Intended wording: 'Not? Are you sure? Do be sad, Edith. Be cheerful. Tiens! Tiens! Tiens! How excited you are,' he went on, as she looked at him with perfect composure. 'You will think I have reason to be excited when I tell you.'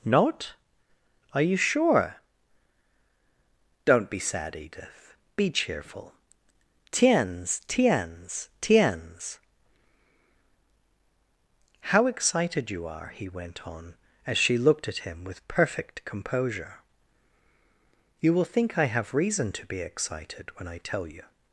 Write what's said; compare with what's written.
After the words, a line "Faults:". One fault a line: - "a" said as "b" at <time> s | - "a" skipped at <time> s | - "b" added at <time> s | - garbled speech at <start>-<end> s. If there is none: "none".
'Not? Are you sure? Don't be sad, Edith. Be cheerful. Tiens! Tiens! Tiens! How excited you are,' he went on, as she looked at him with perfect composure. 'You will think I have reason to be excited when I tell you.'
Faults:
- "Do" said as "Don't" at 3.9 s